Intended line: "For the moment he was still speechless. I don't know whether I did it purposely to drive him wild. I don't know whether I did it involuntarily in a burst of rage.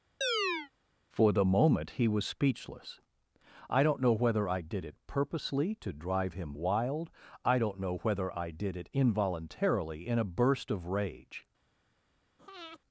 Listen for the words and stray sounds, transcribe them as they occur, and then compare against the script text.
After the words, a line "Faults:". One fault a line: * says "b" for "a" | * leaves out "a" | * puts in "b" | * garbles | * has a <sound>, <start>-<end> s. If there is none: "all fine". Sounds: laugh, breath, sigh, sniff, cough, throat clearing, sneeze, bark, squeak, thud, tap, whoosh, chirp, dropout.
"For the moment he was speechless. I don't know whether I did it purposely to drive him wild. I don't know whether I did it involuntarily in a burst of rage.
Faults:
* has a chirp, 0.2-0.7 s
* leaves out "still"
* has a breath, 12.4-12.8 s